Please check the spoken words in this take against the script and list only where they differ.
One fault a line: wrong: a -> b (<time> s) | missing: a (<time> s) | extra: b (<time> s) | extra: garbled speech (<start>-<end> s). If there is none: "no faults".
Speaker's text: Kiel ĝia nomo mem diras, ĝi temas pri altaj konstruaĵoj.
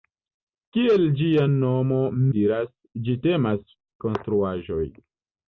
missing: mem (2.0 s)
missing: pri altaj (3.6 s)